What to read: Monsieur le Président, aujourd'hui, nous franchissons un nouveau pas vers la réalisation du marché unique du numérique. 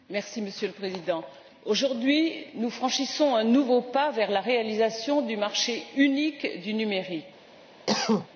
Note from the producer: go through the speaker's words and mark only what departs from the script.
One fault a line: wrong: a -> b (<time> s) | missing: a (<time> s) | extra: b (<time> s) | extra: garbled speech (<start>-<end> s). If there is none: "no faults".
no faults